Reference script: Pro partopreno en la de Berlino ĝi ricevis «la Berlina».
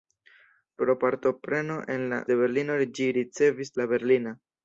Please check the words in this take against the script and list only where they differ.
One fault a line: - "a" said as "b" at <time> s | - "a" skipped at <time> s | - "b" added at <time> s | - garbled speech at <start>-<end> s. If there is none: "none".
none